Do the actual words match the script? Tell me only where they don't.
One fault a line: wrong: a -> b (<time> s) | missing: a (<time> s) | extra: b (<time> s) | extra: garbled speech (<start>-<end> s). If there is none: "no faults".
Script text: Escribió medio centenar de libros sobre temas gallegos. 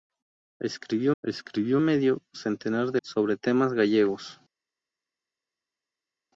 extra: escribió (1.2 s)
missing: libros (3.0 s)